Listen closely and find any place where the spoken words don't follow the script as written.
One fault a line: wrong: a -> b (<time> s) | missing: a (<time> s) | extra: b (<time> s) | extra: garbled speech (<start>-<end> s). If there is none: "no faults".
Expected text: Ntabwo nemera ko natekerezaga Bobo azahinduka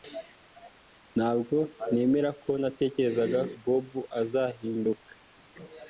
no faults